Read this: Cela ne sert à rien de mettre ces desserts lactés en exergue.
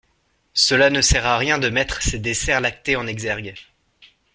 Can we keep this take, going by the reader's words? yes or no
yes